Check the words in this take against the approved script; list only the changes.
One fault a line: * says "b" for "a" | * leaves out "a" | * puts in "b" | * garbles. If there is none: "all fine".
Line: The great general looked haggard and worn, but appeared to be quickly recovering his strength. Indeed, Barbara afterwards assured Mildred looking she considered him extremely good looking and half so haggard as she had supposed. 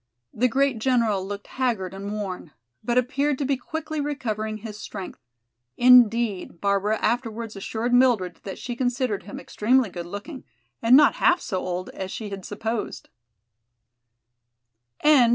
* says "that" for "looking"
* puts in "not"
* says "old" for "haggard"